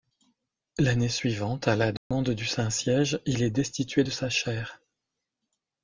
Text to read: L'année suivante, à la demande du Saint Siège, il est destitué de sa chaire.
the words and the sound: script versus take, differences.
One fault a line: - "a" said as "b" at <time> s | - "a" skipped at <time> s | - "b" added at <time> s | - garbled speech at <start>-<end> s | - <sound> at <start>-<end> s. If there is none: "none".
- dropout at 2.0-2.1 s